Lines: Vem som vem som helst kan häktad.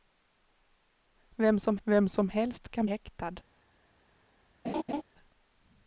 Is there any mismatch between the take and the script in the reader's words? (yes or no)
no